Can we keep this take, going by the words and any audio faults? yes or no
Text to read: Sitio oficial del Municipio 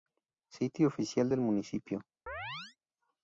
no